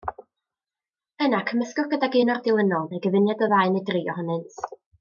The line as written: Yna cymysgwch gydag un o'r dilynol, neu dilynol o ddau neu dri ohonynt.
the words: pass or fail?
fail